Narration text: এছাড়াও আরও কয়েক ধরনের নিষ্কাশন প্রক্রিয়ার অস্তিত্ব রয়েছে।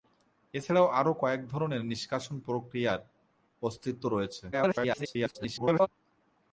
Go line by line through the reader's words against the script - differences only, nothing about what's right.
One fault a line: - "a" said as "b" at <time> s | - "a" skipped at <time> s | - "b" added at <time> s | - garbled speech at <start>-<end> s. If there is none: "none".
- garbled speech at 4.5-5.9 s